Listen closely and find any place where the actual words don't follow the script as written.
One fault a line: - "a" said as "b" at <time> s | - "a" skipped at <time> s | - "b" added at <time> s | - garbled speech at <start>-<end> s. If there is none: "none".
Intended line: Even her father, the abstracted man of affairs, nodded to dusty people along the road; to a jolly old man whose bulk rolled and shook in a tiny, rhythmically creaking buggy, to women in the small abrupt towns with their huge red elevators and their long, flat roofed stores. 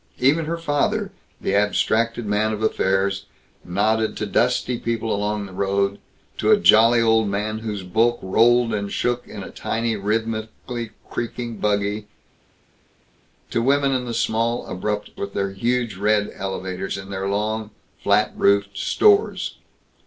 - "towns" skipped at 15.1 s